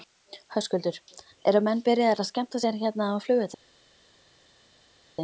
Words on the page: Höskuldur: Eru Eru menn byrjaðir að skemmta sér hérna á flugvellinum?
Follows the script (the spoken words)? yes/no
no